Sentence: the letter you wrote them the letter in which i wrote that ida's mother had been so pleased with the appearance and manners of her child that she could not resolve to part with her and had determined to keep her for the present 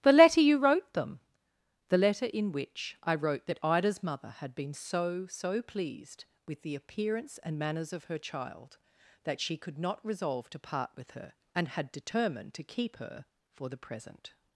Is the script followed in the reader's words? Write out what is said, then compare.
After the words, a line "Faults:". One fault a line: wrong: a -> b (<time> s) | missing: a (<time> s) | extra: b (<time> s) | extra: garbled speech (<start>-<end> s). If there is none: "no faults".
the letter you wrote them the letter in which i wrote that ida's mother had been so so pleased with the appearance and manners of her child that she could not resolve to part with her and had determined to keep her for the present
Faults:
extra: so (5.3 s)